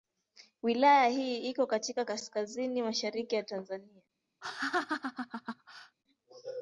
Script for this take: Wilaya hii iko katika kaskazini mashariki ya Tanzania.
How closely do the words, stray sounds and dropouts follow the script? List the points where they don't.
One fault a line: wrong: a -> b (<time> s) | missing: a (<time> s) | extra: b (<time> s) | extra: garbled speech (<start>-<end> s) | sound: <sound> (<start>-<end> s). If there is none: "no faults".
sound: laugh (4.4-6.0 s)